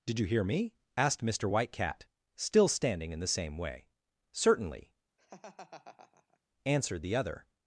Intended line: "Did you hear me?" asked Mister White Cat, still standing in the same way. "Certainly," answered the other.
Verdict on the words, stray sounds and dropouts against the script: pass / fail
fail